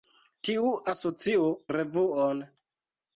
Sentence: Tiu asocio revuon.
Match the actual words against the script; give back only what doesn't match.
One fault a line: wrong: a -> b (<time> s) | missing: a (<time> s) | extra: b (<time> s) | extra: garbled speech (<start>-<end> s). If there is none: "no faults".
no faults